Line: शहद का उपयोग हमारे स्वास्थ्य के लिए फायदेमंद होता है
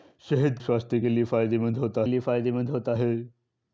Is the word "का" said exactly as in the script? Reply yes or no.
no